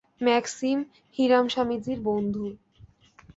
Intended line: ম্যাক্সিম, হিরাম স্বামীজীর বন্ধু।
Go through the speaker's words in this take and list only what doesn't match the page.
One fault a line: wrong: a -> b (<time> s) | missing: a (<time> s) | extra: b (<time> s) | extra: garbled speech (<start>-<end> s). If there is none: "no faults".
no faults